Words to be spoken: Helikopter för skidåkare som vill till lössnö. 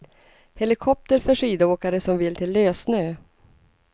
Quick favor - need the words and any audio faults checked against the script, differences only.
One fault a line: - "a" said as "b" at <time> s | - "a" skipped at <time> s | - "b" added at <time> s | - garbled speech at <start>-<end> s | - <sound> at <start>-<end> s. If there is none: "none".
none